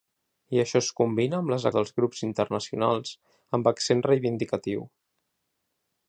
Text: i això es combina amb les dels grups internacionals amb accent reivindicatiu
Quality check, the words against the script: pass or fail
pass